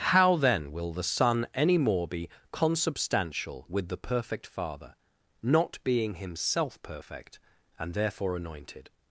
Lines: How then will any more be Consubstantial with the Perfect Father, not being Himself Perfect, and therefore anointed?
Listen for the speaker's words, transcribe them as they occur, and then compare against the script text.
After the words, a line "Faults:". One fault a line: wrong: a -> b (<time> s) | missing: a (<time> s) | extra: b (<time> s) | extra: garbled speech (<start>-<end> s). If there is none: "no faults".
How then will the Son any more be Consubstantial with the Perfect Father, not being Himself Perfect, and therefore anointed?
Faults:
extra: the Son (0.9 s)